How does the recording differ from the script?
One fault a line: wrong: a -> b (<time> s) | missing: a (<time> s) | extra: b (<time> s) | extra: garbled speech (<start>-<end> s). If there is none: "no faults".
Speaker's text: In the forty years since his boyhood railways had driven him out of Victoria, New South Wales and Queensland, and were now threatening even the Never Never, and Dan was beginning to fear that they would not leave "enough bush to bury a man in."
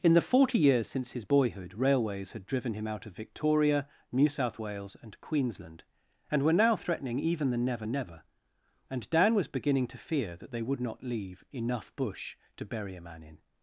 no faults